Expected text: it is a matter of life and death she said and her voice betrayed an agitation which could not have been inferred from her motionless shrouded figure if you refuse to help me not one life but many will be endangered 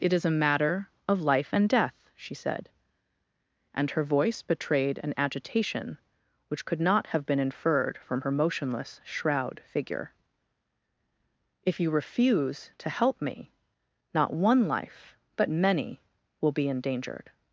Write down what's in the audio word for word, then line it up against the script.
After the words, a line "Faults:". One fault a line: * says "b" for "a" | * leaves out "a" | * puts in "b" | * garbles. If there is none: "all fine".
it is a matter of life and death she said and her voice betrayed an agitation which could not have been inferred from her motionless shroud figure if you refuse to help me not one life but many will be endangered
Faults:
* says "shroud" for "shrouded"